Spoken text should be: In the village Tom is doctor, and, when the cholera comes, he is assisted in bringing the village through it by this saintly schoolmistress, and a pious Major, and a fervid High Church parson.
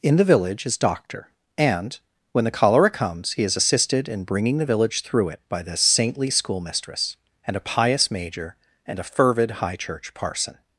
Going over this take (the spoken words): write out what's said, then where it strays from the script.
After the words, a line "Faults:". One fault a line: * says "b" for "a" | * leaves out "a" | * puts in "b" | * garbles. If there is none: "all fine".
In the village is doctor, and, when the cholera comes, he is assisted in bringing the village through it by this saintly schoolmistress, and a pious Major, and a fervid High Church parson.
Faults:
* leaves out "Tom"